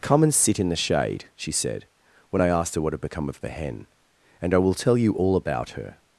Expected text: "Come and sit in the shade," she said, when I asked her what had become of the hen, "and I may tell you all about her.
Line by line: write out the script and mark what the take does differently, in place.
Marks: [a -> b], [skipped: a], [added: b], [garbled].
"Come and sit in the shade," she said, when I asked her what had become of the hen, "and I [may -> will] tell you all about her.